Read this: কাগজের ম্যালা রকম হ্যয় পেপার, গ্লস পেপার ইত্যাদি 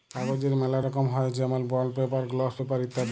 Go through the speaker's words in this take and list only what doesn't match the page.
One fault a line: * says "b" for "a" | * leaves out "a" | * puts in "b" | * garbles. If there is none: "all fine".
* puts in "যেমল বন্ড"